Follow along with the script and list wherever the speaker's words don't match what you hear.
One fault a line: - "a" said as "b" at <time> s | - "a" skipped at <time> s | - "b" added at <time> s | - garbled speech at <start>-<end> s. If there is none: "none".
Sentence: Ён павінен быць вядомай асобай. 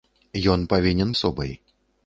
- "быць вядомай" skipped at 1.1 s